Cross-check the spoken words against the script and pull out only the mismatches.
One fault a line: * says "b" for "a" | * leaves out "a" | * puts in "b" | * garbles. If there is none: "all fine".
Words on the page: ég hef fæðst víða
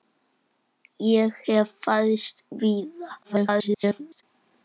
* garbles